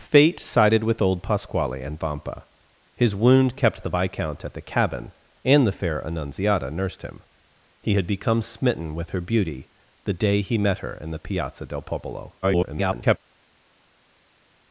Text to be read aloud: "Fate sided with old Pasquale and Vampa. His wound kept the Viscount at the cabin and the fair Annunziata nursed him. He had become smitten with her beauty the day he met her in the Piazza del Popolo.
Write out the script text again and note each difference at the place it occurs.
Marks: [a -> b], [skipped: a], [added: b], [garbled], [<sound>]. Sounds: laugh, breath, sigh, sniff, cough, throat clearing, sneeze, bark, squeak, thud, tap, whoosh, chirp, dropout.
"Fate sided with old Pasquale and Vampa. His wound kept the Viscount at the cabin and the fair Annunziata nursed him. He had become smitten with her beauty the day he met her in the Piazza del Popolo. [garbled]